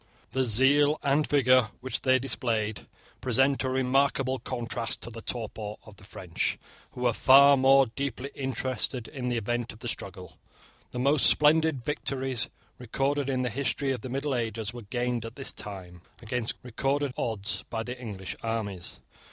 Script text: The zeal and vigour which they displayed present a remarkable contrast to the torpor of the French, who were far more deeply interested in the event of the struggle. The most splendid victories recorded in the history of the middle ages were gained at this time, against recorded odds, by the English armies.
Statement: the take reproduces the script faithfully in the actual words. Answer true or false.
true